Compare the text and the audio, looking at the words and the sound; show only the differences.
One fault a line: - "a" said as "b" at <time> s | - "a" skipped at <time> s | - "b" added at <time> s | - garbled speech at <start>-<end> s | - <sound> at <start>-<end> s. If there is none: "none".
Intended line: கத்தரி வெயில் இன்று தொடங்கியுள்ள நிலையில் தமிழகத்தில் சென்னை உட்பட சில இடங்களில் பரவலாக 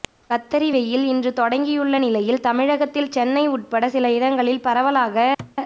- thud at 5.4-5.6 s